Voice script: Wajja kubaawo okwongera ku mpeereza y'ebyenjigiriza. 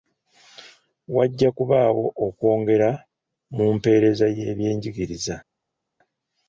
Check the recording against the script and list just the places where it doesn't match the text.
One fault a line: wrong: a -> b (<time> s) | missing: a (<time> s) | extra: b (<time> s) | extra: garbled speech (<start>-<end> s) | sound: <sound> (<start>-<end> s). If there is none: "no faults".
wrong: ku -> mu (3.5 s)